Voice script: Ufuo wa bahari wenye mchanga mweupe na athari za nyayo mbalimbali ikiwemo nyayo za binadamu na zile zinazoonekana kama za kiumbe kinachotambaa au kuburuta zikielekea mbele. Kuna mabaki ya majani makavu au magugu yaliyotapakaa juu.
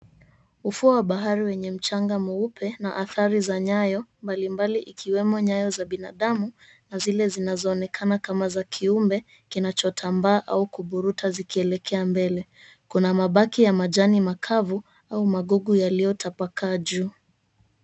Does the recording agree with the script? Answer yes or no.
yes